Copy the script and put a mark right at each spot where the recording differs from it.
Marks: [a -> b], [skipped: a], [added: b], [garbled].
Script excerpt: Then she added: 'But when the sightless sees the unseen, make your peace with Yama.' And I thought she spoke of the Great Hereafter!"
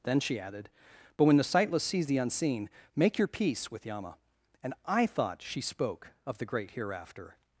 Then she added: 'But when the sightless sees the unseen, make your peace with Yama.' And I thought she spoke of the Great Hereafter!"